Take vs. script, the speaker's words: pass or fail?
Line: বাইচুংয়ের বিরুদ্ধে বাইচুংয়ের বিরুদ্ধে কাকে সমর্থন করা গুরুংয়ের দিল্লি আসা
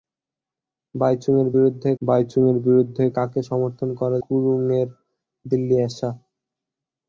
pass